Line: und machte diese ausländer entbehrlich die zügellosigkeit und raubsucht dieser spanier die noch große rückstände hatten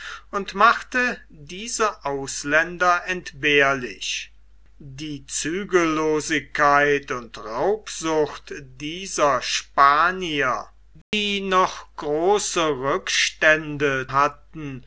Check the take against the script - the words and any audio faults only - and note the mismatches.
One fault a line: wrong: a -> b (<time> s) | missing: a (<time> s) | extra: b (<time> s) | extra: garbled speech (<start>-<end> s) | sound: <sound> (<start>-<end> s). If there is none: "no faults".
sound: dropout (11.0-11.1 s)